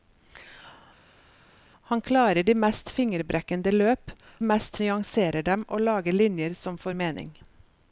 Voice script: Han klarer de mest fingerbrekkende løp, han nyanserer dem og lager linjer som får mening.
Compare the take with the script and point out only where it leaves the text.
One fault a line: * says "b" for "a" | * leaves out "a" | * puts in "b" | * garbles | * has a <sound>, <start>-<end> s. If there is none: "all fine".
* says "mest" for "han"